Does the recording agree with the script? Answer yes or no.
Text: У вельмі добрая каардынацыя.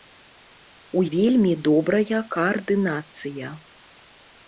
yes